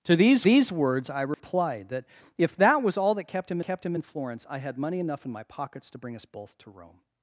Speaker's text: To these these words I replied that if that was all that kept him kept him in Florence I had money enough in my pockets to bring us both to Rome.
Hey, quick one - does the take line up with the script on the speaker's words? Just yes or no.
yes